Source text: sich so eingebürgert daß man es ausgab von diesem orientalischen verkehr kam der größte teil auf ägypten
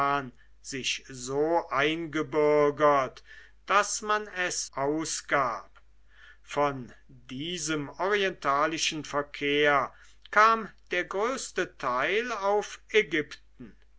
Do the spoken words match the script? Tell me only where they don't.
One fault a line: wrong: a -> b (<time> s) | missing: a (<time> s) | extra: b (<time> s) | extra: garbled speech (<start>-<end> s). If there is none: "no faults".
no faults